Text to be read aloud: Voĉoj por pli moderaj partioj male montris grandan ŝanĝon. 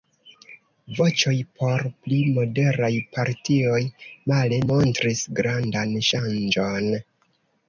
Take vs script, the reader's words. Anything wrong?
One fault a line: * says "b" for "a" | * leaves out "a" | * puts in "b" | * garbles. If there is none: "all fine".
all fine